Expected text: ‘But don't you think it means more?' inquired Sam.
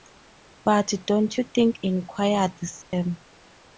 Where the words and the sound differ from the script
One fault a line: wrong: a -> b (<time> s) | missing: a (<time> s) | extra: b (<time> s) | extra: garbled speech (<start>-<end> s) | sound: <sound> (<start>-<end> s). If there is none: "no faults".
missing: it means more (1.8 s)
sound: dropout (2.8-2.9 s)